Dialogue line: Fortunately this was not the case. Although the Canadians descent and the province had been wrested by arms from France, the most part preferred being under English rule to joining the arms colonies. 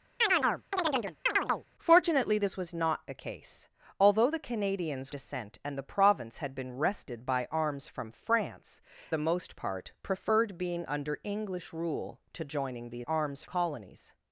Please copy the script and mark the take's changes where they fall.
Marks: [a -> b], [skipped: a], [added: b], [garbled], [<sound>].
[chirp] Fortunately this was not the case. Although the Canadians descent and the province had been wrested by arms from France, the most part preferred being under English rule to joining the arms colonies.